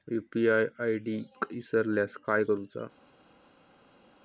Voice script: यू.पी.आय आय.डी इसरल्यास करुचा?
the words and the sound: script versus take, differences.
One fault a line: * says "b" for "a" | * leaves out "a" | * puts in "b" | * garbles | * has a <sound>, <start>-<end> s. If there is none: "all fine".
* puts in "काय"